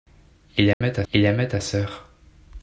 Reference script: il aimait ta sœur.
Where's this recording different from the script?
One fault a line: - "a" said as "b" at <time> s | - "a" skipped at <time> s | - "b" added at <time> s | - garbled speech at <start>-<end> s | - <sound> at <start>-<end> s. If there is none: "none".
- dropout at 0.7-0.8 s
- "il aimait ta" added at 1.1 s